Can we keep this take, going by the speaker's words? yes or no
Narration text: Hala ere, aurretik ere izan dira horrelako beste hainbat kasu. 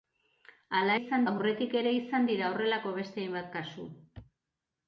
no